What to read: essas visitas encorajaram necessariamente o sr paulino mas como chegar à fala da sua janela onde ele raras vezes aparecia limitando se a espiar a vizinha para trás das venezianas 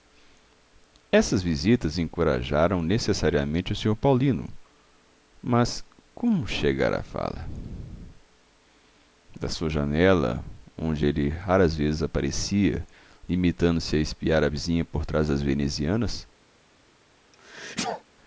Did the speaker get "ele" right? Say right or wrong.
right